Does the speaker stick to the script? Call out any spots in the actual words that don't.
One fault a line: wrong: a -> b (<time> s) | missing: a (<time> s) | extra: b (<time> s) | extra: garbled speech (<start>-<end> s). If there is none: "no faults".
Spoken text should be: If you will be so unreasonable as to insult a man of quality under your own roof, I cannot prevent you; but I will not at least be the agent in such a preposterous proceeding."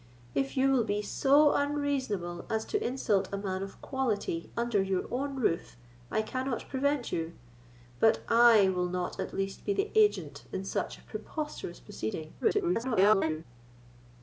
extra: garbled speech (12.4-13.4 s)